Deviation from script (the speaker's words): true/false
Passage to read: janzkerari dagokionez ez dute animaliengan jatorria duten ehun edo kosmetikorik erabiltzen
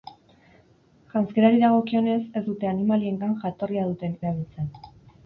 true